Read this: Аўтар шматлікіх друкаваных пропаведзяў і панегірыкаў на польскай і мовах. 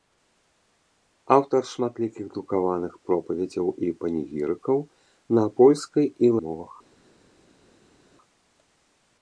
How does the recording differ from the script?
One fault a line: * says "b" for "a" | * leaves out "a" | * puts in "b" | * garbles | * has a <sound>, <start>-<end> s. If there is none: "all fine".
all fine